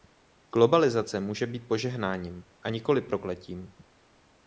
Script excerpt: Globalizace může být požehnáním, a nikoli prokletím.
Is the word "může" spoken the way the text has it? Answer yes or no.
yes